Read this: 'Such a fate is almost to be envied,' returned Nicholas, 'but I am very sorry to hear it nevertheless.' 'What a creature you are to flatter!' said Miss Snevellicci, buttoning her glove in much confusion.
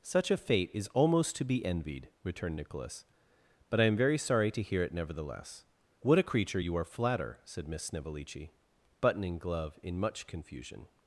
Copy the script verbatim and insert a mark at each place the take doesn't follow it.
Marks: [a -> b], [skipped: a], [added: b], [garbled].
'Such a fate is almost to be envied,' returned Nicholas, 'but I am very sorry to hear it nevertheless.' 'What a creature you are [skipped: to] flatter!' said Miss Snevellicci, buttoning [skipped: her] glove in much confusion.